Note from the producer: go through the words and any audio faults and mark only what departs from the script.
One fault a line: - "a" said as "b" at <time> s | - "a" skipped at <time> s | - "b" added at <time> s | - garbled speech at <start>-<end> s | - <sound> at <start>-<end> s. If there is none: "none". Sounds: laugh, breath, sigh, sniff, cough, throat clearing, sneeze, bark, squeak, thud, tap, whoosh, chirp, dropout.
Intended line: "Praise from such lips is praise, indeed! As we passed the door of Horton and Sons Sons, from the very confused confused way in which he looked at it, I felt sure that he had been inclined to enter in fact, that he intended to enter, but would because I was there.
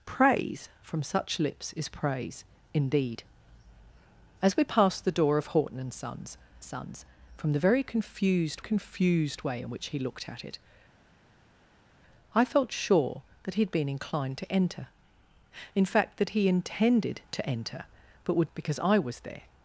none